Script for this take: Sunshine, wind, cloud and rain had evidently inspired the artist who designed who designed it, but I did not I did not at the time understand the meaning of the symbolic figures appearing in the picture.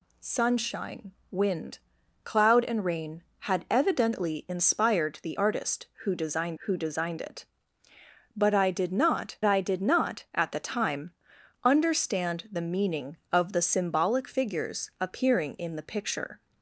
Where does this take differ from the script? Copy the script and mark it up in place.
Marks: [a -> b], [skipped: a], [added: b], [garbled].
Sunshine, wind, cloud and rain had evidently inspired the artist who designed who designed it, but I did not I did not at the time understand the meaning of the symbolic figures appearing in the picture.